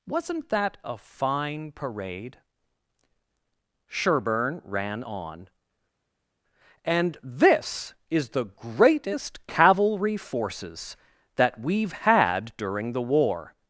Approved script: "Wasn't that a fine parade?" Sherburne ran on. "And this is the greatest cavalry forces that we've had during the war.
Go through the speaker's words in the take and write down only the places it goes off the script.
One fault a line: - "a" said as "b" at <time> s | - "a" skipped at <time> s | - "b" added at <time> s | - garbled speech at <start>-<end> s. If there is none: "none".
none